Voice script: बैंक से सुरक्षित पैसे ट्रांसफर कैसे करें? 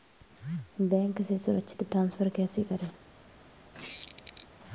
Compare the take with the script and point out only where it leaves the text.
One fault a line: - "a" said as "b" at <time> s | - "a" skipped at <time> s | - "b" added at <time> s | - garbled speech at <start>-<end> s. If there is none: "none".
- "पैसे" skipped at 1.8 s